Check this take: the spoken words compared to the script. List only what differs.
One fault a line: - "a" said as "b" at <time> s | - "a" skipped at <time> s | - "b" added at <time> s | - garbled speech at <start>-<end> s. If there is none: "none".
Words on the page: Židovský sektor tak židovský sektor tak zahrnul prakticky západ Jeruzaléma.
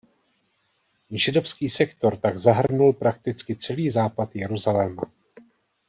- "židovský sektor tak" skipped at 2.4 s
- "celý" added at 3.5 s